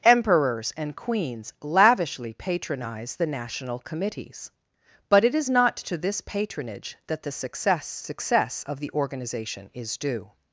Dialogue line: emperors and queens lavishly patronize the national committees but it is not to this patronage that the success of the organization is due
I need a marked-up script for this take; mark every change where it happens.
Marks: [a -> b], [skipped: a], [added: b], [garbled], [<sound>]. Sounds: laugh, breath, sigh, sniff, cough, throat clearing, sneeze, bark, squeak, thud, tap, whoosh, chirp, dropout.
emperors and queens lavishly patronize the national committees but it is not to this patronage that the success [added: success] of the organization is due